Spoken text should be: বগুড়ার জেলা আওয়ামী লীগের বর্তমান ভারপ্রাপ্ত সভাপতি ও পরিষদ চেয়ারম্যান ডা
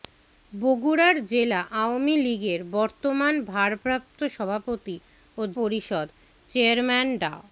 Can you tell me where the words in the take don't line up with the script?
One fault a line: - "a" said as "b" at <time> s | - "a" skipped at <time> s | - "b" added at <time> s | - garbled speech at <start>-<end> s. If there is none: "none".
none